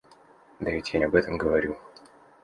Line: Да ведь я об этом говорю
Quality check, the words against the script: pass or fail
pass